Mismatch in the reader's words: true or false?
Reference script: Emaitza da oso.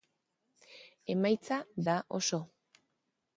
false